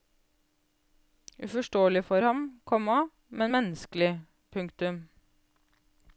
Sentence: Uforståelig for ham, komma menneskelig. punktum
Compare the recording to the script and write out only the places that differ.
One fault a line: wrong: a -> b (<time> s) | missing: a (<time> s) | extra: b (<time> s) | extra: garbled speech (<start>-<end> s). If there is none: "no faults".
extra: men (3.3 s)